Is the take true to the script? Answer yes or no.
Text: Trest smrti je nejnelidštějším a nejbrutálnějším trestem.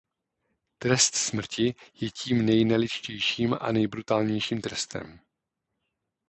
no